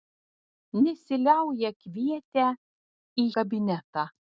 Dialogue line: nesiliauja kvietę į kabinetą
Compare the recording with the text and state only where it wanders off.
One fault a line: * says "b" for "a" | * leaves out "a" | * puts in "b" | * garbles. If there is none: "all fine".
all fine